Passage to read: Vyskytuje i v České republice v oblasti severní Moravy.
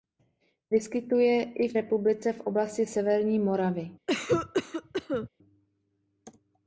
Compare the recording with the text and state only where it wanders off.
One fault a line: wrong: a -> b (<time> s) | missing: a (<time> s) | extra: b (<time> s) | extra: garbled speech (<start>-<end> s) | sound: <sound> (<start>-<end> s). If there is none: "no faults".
missing: České (1.7 s)
sound: cough (4.1-5.3 s)